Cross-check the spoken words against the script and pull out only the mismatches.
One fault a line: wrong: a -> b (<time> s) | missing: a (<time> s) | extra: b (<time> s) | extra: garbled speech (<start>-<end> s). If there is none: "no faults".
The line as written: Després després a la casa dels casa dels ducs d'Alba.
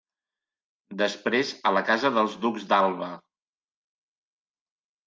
missing: després (1.5 s)
missing: casa dels (2.4 s)